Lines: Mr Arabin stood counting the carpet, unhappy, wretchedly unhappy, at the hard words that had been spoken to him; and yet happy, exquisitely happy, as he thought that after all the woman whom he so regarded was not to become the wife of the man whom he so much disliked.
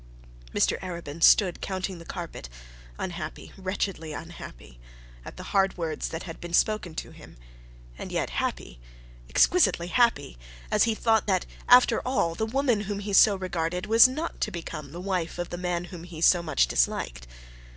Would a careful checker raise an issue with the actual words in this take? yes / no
no